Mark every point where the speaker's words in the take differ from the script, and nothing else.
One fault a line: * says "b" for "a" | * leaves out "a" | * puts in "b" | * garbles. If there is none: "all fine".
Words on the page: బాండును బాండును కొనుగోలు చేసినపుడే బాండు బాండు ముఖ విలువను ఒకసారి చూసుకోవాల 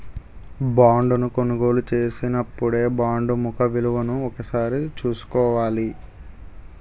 * leaves out "బాండును"
* leaves out "బాండు"